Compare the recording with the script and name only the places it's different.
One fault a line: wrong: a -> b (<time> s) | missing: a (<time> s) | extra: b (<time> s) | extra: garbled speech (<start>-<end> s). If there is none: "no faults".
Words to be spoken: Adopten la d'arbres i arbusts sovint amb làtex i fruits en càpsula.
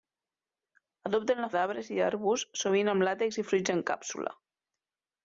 no faults